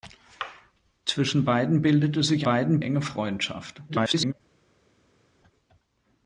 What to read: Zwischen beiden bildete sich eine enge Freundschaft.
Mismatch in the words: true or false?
true